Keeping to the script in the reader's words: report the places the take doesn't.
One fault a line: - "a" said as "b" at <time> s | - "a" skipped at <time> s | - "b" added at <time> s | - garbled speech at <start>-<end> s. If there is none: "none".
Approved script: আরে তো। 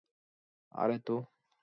none